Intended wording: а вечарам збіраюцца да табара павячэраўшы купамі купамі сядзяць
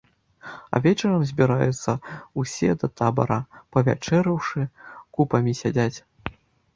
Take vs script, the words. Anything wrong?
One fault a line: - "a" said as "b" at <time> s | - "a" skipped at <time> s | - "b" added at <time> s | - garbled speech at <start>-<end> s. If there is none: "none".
- "ўсе" added at 2.4 s
- "купамі" skipped at 5.5 s